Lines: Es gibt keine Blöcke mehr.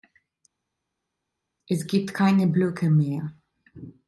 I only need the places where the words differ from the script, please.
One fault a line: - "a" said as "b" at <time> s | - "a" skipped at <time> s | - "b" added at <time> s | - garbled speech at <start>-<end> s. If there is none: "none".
none